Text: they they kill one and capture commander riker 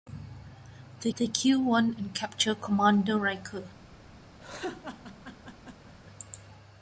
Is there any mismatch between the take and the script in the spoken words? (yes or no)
no